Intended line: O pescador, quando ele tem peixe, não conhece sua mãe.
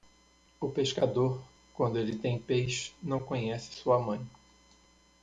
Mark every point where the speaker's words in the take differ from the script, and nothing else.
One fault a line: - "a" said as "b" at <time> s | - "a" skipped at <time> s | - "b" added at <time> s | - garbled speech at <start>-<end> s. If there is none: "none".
none